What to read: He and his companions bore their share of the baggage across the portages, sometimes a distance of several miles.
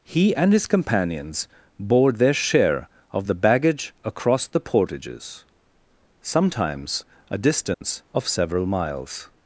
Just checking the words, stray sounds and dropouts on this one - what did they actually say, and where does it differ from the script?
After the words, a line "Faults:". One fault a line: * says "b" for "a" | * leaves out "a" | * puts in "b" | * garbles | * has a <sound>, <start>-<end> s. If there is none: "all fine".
He and his companions bore their share of the baggage across the portages, sometimes a distance of several miles.
Faults:
* has a dropout, 7.7-7.8 s